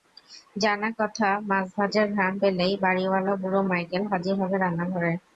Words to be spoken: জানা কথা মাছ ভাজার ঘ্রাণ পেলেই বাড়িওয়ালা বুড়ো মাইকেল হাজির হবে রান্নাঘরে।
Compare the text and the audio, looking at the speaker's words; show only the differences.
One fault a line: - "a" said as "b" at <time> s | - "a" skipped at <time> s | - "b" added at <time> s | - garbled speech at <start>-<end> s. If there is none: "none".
none